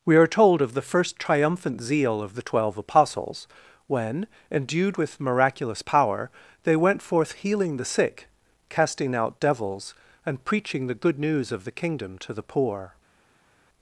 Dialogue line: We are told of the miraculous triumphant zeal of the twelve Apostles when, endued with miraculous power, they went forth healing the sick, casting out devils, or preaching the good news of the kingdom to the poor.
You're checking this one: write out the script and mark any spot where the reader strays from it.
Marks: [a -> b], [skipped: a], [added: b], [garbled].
We are told of the [miraculous -> first] triumphant zeal of the twelve Apostles when, endued with miraculous power, they went forth healing the sick, casting out devils, [or -> and] preaching the good news of the kingdom to the poor.